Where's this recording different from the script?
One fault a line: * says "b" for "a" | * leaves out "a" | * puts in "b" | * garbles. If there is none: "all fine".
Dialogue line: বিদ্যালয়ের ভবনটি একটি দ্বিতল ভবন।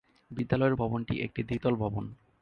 all fine